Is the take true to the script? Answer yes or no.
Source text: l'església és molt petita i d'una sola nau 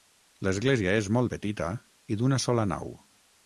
yes